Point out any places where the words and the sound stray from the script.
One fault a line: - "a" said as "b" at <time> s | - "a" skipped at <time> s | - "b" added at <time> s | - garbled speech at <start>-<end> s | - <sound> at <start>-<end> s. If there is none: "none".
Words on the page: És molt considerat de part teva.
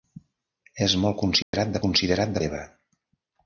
- dropout at 1.4-1.5 s
- "part" said as "considerat" at 1.8 s